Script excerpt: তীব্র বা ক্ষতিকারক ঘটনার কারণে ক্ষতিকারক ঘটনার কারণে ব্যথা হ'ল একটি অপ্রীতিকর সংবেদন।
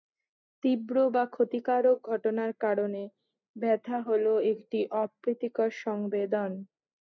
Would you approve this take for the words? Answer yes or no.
no